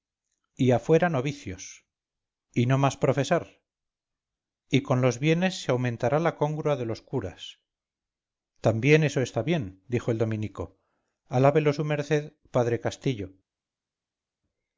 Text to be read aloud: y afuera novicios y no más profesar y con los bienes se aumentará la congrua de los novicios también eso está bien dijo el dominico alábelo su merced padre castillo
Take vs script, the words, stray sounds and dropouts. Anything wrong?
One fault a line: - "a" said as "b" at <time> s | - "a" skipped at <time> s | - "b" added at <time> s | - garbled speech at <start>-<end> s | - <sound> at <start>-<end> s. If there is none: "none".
- "novicios" said as "curas" at 7.0 s